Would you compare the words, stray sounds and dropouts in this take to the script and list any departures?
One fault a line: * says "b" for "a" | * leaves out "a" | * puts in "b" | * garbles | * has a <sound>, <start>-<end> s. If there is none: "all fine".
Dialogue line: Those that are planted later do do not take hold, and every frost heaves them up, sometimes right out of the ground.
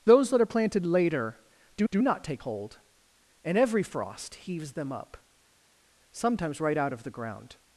all fine